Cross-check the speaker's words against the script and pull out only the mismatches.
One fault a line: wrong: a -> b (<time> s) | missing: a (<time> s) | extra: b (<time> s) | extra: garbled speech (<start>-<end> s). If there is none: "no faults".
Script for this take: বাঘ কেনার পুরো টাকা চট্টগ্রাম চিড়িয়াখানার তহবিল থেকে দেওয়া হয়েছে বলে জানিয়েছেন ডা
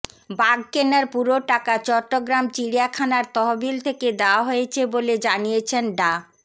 no faults